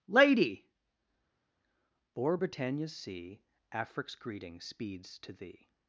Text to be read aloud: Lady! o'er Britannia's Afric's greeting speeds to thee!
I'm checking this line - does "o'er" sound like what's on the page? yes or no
yes